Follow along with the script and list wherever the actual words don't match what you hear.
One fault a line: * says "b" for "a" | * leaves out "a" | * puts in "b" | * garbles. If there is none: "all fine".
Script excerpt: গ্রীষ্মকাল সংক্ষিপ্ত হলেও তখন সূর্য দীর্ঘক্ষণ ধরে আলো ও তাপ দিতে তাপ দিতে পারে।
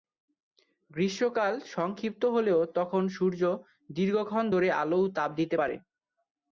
* leaves out "তাপ দিতে"